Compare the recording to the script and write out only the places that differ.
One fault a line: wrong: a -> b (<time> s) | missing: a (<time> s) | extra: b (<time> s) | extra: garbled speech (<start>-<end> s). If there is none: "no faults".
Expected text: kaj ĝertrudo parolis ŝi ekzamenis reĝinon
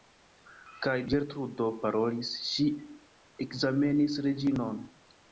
no faults